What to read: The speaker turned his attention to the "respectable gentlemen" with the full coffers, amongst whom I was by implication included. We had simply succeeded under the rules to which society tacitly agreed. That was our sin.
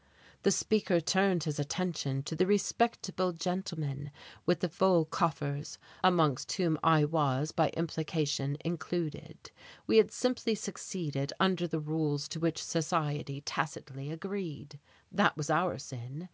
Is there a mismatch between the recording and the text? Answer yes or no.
no